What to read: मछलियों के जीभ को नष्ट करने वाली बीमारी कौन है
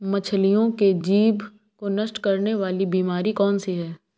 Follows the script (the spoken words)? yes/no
no